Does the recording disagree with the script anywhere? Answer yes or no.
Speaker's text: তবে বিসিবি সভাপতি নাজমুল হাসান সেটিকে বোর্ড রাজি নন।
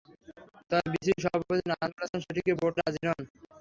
no